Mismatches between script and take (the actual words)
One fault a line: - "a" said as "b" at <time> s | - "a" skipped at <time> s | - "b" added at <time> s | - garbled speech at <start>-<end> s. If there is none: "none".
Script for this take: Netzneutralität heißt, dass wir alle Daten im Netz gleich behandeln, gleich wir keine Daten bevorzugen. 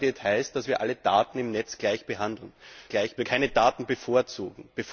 none